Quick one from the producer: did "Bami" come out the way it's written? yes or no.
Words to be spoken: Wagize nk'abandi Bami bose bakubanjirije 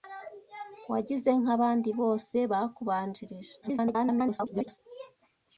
no